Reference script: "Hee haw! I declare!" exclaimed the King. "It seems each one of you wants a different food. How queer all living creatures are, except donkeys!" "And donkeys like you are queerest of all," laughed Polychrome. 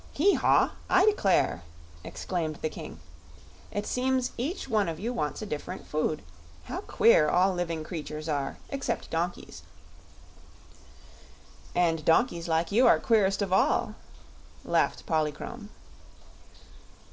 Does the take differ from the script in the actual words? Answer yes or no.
no